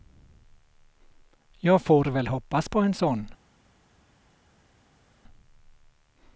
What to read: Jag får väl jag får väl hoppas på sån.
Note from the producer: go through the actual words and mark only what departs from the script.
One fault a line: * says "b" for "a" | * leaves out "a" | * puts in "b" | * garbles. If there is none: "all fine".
* leaves out "jag får väl"
* puts in "en"